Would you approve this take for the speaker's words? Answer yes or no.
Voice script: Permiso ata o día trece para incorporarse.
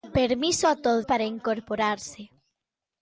no